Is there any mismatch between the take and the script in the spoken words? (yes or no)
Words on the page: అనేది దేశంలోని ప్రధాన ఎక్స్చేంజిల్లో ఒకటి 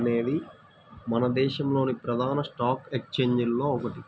yes